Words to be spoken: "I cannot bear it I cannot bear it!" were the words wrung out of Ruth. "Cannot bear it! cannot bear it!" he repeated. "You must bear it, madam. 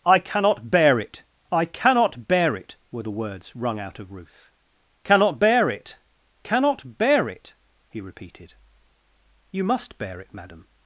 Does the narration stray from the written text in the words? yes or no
no